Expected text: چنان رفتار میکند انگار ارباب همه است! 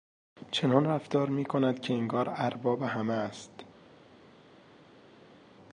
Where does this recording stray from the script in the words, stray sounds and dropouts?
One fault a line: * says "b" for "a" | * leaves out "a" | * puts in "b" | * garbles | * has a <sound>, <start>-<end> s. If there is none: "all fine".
* puts in "که"